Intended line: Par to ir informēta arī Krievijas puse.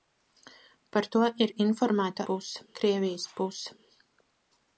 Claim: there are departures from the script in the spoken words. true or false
true